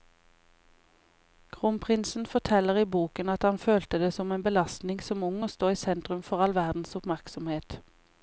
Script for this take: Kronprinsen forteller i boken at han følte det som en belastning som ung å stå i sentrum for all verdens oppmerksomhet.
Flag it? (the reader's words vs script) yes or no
no